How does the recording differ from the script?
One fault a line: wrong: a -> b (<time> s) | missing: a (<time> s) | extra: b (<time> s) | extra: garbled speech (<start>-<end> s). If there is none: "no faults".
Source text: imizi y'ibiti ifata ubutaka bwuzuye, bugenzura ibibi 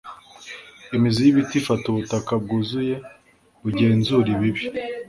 no faults